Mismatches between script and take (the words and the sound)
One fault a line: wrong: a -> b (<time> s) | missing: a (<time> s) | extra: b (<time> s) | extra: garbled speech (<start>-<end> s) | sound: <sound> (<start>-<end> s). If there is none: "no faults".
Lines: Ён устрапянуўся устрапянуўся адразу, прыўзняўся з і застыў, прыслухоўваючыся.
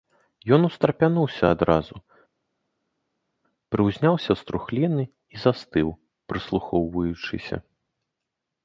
missing: устрапянуўся (1.4 s)
extra: трухліны (4.5 s)